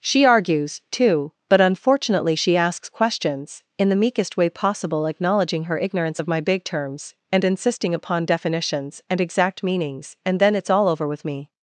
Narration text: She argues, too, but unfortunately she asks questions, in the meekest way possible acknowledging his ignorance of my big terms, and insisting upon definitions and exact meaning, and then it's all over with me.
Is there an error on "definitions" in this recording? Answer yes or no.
no